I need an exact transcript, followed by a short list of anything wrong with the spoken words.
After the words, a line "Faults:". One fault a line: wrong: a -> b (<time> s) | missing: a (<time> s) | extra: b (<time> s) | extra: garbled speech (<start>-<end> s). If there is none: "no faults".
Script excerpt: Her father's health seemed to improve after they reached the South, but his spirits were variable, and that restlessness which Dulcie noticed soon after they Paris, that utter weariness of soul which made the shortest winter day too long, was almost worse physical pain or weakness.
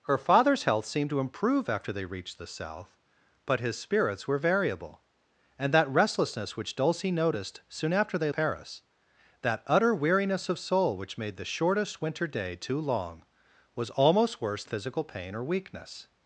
Her father's health seemed to improve after they reached the South, but his spirits were variable, and that restlessness which Dulcie noticed soon after they Paris, that utter weariness of soul which made the shortest winter day too long, was almost worse physical pain or weakness.
Faults:
no faults